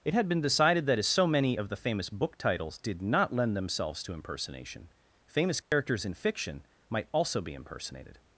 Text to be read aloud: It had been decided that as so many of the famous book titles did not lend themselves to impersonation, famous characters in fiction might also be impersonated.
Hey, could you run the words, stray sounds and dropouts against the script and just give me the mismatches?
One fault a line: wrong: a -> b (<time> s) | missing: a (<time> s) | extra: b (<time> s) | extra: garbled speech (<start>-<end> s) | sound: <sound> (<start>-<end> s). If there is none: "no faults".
sound: dropout (5.6-5.7 s)